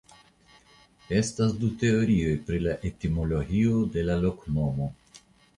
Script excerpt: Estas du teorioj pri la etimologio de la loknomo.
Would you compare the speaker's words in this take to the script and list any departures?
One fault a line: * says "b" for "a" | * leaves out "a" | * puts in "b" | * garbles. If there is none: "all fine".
all fine